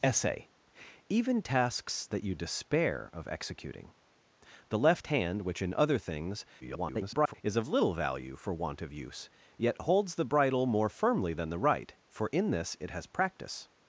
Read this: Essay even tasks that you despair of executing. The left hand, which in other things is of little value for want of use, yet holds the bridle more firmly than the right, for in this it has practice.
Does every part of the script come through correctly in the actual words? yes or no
no